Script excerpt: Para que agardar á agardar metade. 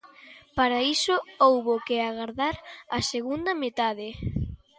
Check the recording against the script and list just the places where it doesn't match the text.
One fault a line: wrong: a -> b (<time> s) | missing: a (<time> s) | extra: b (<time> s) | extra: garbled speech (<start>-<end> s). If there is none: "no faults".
extra: iso houbo (0.9 s)
wrong: agardar -> segunda (3.1 s)